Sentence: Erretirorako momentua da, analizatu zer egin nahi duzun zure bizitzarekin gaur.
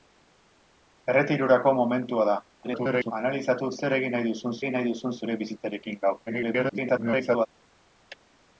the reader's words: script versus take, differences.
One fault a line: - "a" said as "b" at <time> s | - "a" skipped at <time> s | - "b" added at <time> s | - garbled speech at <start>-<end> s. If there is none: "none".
- garbled speech at 2.6-3.1 s
- "egin nahi duzun" added at 4.6 s
- garbled speech at 6.3-7.5 s